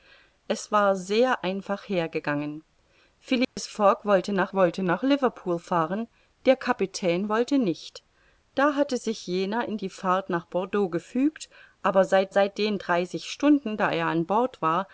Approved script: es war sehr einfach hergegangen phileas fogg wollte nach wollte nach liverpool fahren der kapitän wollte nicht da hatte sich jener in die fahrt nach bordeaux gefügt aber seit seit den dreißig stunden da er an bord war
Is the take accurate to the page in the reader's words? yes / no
yes